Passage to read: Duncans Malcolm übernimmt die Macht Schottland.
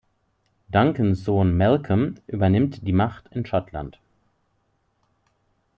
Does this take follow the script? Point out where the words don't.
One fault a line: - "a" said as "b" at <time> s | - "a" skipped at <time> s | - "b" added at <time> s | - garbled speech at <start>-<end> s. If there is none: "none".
- "Sohn" added at 1.2 s
- "in" added at 3.3 s